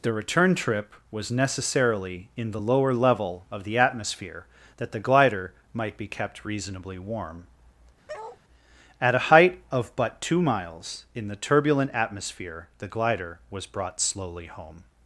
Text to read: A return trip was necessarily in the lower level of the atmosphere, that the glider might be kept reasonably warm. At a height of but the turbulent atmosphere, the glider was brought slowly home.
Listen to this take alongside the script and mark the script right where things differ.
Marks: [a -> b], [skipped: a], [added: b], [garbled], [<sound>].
[A -> The] return trip was necessarily in the lower level of the atmosphere, that the glider might be kept reasonably warm. [bark] At a height of but [added: two miles in] the turbulent atmosphere, the glider was brought slowly home.